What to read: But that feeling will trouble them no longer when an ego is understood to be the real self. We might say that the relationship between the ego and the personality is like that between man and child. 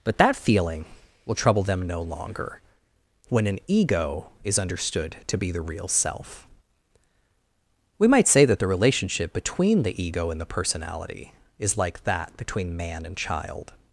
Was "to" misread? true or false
false